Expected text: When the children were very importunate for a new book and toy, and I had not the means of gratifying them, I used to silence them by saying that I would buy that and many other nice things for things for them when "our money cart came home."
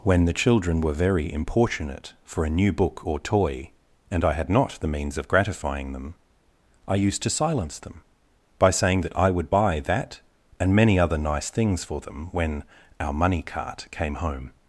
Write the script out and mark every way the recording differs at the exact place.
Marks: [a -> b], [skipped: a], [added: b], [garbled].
When the children were very importunate for a new book [and -> or] toy, and I had not the means of gratifying them, I used to silence them by saying that I would buy that and many other nice things for [skipped: things for] them when "our money cart came home."